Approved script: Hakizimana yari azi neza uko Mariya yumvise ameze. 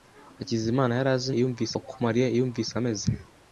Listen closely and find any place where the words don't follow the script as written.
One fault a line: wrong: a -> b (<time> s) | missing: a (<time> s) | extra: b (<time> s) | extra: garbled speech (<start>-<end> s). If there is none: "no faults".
wrong: neza -> yumvise (1.4 s)